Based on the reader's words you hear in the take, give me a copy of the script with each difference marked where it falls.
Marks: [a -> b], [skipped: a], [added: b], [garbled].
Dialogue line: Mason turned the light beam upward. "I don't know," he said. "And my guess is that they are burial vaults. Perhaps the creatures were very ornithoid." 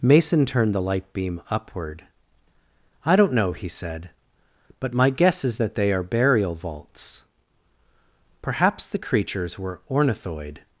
Mason turned the light beam upward. "I don't know," he said. ["And -> But] my guess is that they are burial vaults. Perhaps the creatures were [skipped: very] ornithoid."